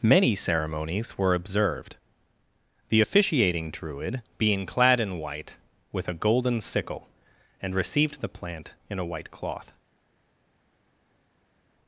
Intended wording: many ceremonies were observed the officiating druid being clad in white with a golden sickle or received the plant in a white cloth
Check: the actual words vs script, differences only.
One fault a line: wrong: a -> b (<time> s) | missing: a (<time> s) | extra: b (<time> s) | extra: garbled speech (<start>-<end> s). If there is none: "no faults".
wrong: or -> and (7.6 s)